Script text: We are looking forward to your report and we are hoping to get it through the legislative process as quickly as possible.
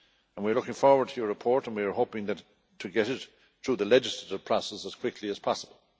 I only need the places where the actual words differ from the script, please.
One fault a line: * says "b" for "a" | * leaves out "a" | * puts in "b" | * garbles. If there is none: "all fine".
all fine